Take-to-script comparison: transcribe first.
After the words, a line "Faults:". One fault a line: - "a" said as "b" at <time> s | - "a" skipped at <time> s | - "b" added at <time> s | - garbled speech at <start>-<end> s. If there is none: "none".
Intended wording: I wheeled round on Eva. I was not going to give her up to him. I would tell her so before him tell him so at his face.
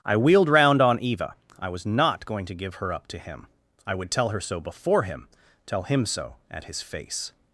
I wheeled round on Eva. I was not going to give her up to him. I would tell her so before him tell him so at his face.
Faults:
none